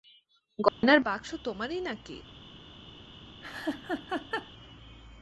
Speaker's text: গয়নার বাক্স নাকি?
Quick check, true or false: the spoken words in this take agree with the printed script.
false